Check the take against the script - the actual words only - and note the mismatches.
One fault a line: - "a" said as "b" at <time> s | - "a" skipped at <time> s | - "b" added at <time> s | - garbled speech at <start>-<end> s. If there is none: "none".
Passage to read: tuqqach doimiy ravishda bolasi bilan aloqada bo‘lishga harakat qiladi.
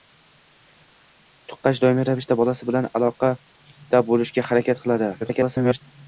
- garbled speech at 5.2-5.8 s